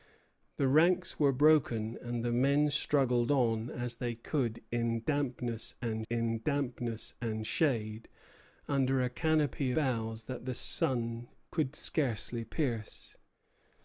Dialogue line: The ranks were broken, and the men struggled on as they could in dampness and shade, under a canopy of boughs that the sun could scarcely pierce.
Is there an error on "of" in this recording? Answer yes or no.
yes